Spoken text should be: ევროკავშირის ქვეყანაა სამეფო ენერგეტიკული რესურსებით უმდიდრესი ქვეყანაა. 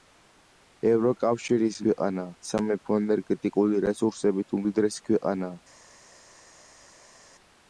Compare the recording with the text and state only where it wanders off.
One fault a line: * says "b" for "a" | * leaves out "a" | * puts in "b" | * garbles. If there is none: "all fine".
all fine